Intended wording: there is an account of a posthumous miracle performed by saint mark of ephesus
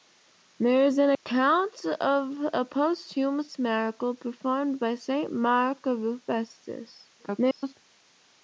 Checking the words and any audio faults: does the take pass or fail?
fail